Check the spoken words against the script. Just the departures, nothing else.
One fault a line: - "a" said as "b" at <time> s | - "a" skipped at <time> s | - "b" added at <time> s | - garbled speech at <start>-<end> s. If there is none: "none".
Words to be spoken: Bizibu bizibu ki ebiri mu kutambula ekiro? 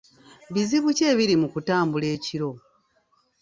- "bizibu" skipped at 0.9 s